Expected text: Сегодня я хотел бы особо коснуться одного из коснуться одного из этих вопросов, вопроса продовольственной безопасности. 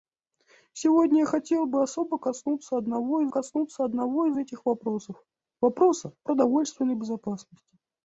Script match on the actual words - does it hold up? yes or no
yes